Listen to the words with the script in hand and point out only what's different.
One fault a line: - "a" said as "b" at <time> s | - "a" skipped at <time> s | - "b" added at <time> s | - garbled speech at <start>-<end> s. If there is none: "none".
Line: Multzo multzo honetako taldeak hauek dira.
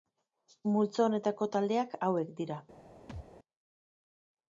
- "multzo" skipped at 1.0 s